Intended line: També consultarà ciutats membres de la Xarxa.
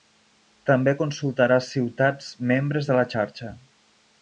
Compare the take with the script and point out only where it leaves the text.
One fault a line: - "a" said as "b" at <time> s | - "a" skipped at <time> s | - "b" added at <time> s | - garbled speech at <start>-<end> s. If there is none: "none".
none